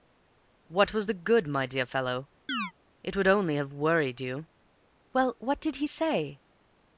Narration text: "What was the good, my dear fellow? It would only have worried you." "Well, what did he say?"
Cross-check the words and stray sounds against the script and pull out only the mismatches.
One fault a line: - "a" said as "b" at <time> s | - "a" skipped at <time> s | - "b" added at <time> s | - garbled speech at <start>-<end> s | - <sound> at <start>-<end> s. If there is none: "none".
- chirp at 2.5-2.7 s